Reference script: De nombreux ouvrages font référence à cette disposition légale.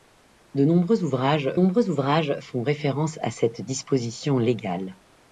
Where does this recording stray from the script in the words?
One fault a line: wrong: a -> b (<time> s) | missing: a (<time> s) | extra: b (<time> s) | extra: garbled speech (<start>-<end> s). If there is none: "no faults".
extra: nombreux ouvrages (1.5 s)